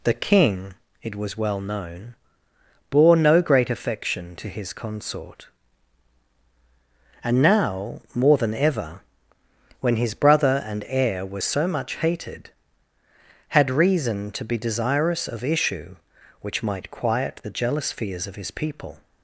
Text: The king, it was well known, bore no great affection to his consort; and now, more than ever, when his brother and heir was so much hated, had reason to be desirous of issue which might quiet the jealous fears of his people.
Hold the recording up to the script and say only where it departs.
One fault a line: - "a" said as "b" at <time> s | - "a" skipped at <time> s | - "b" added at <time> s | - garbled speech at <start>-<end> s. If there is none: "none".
none